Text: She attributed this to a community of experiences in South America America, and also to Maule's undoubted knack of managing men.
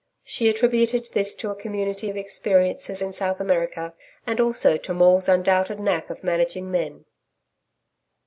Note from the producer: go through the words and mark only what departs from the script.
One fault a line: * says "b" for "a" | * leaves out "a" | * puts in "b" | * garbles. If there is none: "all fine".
* leaves out "America"